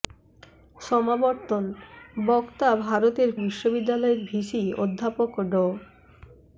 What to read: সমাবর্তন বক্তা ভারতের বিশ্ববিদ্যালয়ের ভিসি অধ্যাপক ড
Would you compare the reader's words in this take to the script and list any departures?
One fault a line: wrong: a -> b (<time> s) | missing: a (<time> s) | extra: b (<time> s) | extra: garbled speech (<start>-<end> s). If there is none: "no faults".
no faults